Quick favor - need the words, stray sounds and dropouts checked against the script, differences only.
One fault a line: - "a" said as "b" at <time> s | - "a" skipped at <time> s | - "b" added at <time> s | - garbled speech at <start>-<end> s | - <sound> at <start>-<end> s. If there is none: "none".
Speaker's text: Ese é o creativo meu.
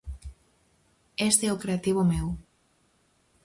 none